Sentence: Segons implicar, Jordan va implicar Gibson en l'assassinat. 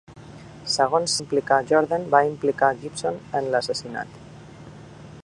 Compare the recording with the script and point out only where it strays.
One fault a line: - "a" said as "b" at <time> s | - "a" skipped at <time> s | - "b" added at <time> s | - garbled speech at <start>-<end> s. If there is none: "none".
none